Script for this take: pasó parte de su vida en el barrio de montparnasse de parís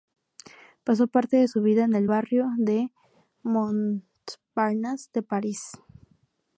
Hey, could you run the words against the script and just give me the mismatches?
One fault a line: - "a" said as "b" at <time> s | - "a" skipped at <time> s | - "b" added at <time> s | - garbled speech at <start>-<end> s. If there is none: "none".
none